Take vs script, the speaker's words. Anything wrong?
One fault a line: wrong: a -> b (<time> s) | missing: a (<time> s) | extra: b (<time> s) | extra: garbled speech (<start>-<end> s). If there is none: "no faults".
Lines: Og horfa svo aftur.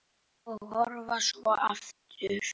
no faults